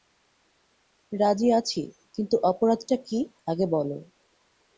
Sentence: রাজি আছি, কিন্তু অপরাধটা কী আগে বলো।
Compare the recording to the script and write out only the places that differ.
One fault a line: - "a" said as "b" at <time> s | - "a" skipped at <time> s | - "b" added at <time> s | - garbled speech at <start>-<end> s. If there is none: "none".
none